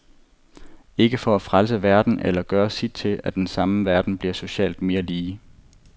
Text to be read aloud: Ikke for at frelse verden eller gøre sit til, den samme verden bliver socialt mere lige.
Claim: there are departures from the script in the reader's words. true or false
true